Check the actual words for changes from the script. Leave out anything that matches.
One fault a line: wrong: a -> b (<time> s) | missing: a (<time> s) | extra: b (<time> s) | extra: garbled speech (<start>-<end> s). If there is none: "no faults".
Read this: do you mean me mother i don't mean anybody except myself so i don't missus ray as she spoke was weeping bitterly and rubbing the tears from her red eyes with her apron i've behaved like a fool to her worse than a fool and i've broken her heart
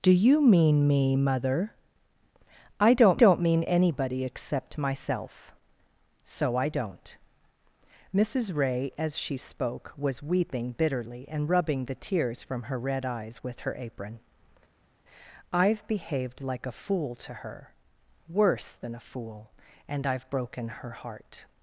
extra: don't (3.2 s)